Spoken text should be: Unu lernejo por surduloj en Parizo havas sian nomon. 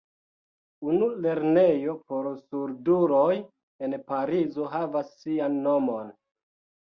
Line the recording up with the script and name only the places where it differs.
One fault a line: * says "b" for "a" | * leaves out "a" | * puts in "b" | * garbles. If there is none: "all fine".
all fine